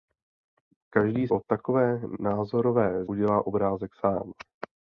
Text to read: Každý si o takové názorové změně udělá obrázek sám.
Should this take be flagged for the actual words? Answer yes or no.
yes